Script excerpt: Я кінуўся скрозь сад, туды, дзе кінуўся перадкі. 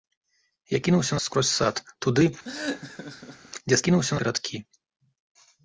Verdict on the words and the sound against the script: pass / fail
fail